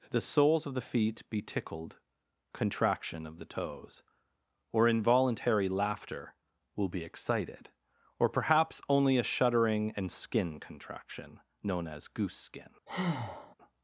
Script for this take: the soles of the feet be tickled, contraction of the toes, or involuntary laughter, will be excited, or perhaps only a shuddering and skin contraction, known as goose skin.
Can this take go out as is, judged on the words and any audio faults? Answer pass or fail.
fail